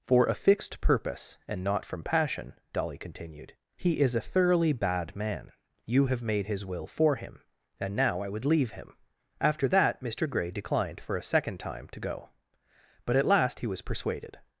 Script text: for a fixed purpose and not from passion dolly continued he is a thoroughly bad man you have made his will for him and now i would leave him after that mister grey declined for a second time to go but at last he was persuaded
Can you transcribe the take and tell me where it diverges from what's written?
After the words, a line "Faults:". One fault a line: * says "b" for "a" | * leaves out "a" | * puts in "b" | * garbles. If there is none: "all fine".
for a fixed purpose and not from passion dolly continued he is a thoroughly bad man you have made his will for him and now i would leave him after that mister grey declined for a second time to go but at last he was persuaded
Faults:
all fine